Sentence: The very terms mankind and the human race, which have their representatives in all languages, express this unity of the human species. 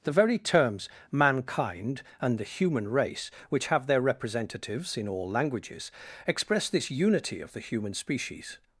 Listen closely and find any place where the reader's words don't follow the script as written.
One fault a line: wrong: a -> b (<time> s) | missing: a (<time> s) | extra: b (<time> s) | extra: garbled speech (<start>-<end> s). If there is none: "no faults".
no faults